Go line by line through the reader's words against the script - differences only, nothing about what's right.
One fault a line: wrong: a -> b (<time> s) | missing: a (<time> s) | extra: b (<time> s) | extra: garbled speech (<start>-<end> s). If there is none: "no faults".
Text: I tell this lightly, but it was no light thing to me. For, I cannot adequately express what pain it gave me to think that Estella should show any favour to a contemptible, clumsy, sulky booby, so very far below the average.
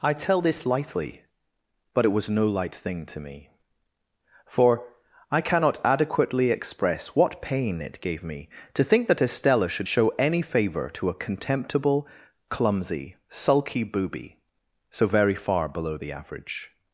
no faults